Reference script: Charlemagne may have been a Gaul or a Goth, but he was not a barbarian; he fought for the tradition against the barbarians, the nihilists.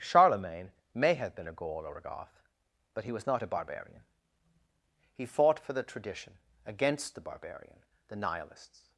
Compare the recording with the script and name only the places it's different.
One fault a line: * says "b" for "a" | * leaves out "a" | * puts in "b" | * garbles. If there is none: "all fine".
* says "barbarian" for "barbarians"